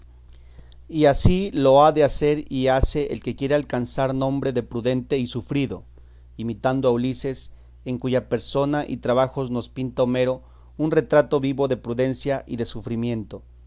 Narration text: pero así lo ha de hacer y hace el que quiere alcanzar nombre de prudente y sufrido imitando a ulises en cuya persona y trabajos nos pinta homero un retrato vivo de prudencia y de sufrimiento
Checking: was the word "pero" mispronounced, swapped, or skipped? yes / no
yes